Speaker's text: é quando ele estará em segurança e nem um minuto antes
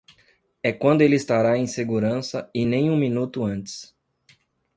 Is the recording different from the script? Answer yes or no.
no